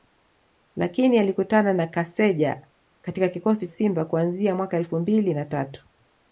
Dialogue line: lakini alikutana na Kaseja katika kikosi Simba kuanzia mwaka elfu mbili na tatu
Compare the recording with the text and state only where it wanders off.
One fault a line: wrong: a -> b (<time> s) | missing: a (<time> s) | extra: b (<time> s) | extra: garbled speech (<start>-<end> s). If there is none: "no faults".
no faults